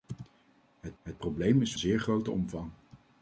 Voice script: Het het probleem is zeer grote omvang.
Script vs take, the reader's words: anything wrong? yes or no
no